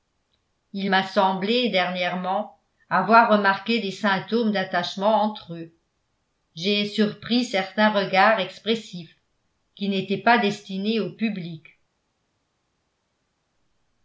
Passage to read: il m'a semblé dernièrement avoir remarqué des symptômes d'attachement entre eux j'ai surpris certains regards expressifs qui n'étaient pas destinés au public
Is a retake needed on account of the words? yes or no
no